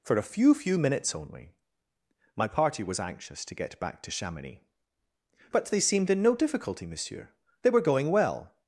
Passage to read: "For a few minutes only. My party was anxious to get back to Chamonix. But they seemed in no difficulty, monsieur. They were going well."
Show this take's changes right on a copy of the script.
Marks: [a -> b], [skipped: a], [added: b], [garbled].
"For a few [added: few] minutes only. My party was anxious to get back to Chamonix. But they seemed in no difficulty, monsieur. They were going well."